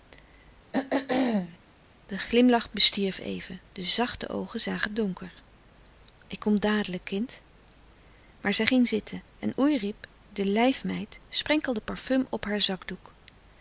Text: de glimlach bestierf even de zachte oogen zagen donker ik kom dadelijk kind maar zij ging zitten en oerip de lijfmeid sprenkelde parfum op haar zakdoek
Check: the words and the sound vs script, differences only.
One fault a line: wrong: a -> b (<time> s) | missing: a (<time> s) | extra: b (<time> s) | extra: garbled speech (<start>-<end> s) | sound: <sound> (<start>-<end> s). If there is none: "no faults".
sound: throat clearing (0.7-1.6 s)